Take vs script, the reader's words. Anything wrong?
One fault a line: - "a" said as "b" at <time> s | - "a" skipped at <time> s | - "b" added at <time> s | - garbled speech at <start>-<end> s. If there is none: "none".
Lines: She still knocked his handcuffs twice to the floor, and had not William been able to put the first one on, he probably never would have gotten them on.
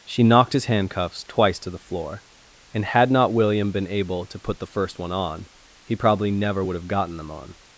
- "still" skipped at 0.2 s